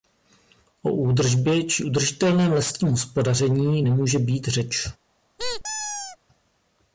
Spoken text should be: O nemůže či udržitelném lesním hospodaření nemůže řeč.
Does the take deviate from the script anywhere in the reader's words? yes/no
yes